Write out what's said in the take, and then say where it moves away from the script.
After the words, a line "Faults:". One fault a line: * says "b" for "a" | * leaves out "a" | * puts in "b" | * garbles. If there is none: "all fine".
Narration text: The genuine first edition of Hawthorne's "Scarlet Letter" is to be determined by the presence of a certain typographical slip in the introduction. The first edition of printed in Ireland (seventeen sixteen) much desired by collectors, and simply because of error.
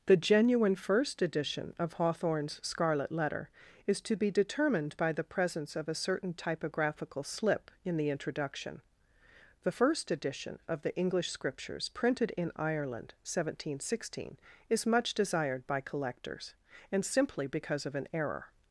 The genuine first edition of Hawthorne's "Scarlet Letter" is to be determined by the presence of a certain typographical slip in the introduction. The first edition of the English Scriptures printed in Ireland (seventeen sixteen) is much desired by collectors, and simply because of an error.
Faults:
* puts in "the English Scriptures"
* puts in "is"
* puts in "an"